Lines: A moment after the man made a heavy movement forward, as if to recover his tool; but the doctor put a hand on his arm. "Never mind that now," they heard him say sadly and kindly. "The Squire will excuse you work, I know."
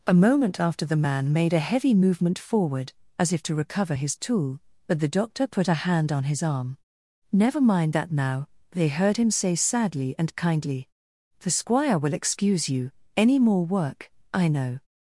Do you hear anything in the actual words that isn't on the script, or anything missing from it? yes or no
yes